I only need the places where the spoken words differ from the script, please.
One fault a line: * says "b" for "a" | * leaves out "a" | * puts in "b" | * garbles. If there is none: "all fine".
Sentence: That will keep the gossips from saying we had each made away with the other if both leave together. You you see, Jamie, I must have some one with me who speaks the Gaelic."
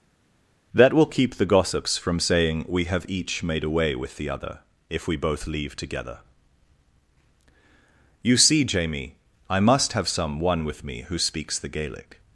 * says "have" for "had"
* puts in "we"
* leaves out "you"